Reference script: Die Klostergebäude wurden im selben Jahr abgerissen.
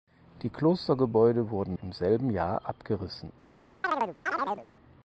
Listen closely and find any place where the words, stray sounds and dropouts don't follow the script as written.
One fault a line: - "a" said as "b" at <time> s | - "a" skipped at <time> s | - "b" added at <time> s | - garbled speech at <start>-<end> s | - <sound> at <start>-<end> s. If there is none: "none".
- chirp at 3.8-4.7 s